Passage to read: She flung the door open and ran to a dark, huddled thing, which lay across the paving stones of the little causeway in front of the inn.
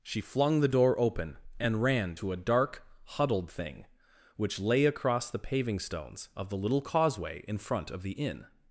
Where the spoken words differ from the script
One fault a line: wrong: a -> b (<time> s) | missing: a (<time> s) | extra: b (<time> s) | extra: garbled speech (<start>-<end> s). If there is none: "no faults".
no faults